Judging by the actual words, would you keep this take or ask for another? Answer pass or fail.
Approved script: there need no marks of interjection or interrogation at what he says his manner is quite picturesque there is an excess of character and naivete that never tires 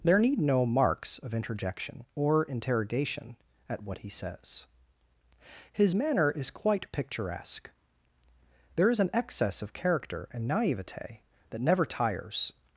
pass